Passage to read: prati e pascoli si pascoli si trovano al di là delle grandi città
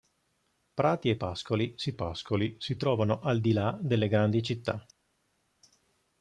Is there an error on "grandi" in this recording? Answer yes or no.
no